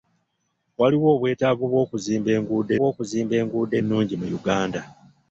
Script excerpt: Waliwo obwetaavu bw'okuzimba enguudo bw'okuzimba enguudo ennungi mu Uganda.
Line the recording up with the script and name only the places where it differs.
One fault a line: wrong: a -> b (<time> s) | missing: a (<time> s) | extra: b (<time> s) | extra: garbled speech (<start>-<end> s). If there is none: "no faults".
no faults